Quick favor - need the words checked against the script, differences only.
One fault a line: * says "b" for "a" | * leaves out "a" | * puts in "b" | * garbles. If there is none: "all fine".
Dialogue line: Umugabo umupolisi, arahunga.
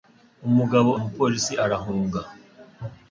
all fine